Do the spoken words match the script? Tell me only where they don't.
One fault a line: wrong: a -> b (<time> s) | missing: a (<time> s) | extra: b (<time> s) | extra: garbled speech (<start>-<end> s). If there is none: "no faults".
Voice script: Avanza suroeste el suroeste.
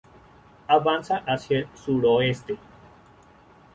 wrong: suroeste -> hacia (1.3 s)